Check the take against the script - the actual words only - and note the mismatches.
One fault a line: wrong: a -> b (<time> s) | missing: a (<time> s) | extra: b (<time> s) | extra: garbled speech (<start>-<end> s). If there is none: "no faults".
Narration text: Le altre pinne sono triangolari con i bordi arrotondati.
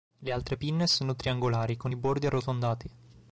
no faults